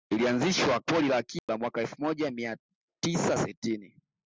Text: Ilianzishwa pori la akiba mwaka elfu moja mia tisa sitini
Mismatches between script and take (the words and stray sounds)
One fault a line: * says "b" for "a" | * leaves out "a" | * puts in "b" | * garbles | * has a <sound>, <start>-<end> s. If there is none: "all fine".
* has a dropout, 1.4-1.5 s